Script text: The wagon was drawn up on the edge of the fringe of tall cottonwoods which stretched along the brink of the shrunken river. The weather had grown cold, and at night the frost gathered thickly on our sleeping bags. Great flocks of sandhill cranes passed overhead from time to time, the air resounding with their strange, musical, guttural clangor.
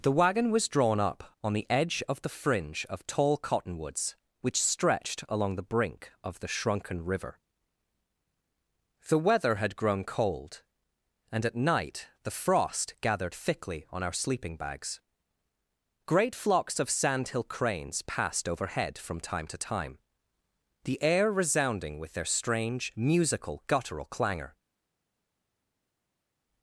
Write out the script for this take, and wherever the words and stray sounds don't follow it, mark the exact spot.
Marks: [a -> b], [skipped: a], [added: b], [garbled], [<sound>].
The wagon was drawn up on the edge of the fringe of tall cottonwoods which stretched along the brink of the shrunken river. The weather had grown cold, and at night the frost gathered thickly on our sleeping bags. Great flocks of sandhill cranes passed overhead from time to time, the air resounding with their strange, musical, guttural clangor.